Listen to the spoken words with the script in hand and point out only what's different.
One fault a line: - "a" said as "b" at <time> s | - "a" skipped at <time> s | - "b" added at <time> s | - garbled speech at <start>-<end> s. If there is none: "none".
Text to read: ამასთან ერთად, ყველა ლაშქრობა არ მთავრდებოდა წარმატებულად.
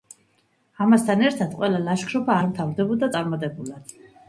none